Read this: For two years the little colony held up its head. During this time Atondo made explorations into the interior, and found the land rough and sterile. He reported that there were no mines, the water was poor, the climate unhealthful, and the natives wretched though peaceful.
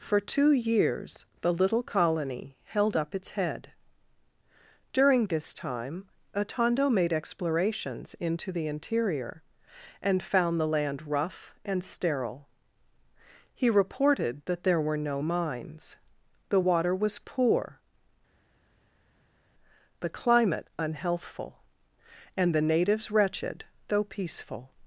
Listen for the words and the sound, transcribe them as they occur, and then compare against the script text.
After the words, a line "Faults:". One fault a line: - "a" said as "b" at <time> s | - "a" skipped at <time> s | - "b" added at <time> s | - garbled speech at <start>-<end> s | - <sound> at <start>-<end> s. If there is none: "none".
For two years the little colony held up its head. During this time Atondo made explorations into the interior, and found the land rough and sterile. He reported that there were no mines, the water was poor, the climate unhealthful, and the natives wretched though peaceful.
Faults:
none